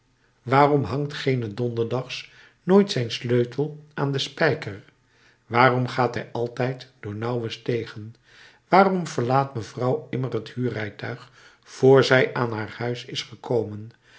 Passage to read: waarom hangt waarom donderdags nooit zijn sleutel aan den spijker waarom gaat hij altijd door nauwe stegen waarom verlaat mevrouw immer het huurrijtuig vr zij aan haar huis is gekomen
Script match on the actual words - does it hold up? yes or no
no